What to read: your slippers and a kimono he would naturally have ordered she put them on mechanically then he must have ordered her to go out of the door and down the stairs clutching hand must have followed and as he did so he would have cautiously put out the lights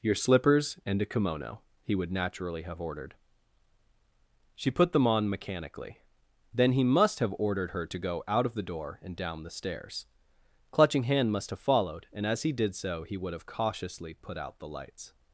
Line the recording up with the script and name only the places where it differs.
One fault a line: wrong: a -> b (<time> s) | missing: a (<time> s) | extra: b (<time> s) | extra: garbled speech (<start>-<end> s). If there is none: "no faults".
no faults